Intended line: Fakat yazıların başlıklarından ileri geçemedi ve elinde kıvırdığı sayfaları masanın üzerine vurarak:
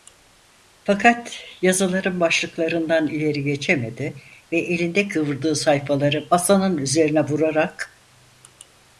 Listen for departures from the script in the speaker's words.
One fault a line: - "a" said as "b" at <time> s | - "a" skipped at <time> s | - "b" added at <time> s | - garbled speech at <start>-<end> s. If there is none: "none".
none